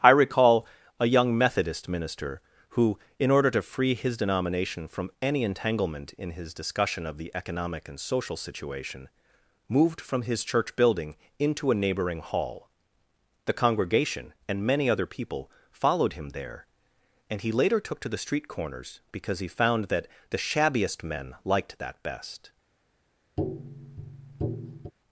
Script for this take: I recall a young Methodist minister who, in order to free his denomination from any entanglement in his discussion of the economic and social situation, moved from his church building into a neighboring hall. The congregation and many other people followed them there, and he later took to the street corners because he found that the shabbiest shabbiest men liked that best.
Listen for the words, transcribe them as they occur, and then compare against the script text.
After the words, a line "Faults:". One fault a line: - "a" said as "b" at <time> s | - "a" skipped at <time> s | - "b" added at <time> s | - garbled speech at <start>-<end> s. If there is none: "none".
I recall a young Methodist minister who, in order to free his denomination from any entanglement in his discussion of the economic and social situation, moved from his church building into a neighboring hall. The congregation and many other people followed him there, and he later took to the street corners because he found that the shabbiest men liked that best.
Faults:
- "them" said as "him" at 16.1 s
- "shabbiest" skipped at 21.0 s